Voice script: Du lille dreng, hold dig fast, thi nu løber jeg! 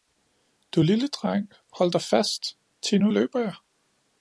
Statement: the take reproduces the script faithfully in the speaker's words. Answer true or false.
true